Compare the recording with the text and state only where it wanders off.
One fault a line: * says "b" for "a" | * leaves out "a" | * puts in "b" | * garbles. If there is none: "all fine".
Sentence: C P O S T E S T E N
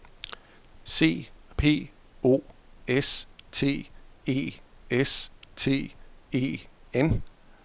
all fine